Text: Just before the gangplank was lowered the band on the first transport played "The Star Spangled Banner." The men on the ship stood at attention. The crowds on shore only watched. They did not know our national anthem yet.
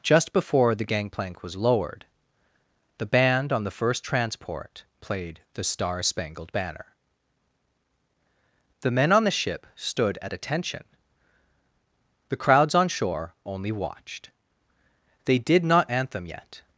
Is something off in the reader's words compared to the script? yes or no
yes